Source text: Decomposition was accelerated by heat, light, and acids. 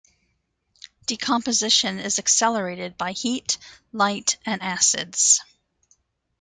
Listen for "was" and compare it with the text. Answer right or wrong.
wrong